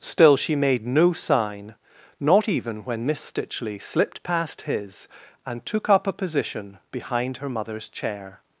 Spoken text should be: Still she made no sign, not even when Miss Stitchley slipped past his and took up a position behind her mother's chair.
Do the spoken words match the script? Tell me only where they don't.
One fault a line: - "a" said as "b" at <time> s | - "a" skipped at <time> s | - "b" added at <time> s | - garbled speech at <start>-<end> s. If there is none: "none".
none